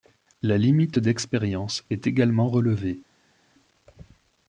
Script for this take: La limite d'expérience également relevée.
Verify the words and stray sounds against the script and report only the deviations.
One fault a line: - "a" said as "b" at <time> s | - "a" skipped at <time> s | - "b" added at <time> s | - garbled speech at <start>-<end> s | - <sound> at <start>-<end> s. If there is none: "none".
- "est" added at 1.9 s